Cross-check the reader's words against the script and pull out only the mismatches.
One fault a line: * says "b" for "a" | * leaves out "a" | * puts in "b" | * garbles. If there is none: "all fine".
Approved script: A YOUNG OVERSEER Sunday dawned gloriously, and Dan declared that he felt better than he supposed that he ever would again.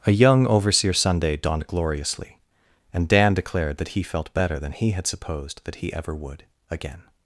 * puts in "had"